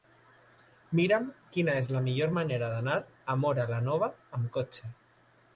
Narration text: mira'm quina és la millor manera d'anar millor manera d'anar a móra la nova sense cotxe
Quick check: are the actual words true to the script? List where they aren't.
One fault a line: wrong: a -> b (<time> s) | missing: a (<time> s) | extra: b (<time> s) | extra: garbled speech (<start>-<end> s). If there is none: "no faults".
missing: millor manera d'anar (3.0 s)
wrong: sense -> amb (4.4 s)